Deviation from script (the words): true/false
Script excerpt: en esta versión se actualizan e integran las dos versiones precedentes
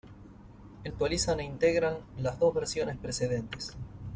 true